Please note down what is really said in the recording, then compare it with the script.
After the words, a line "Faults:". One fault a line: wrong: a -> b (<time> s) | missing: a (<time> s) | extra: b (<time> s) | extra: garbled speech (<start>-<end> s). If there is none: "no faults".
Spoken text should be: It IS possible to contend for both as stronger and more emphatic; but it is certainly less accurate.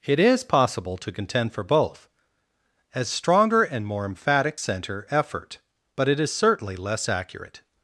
It IS possible to contend for both as stronger and more emphatic; center effort but it is certainly less accurate.
Faults:
extra: center effort (4.6 s)